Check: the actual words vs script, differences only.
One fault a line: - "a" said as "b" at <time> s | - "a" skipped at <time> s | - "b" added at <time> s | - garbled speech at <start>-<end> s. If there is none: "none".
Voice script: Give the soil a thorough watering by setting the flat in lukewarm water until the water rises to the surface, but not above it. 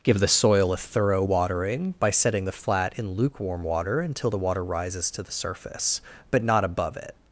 none